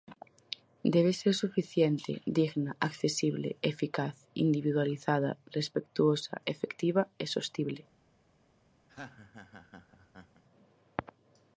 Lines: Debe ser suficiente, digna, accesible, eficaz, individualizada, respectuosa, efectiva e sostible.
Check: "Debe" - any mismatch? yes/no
no